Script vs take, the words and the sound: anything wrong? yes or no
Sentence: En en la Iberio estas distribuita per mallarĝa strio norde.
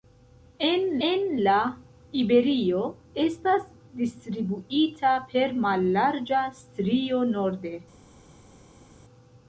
no